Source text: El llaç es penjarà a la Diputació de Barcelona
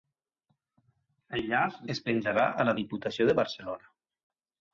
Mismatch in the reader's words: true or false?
false